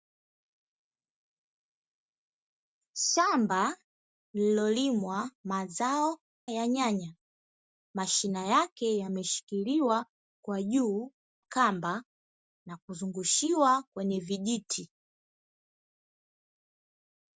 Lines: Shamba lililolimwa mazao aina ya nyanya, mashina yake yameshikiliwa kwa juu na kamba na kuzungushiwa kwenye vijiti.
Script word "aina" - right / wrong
wrong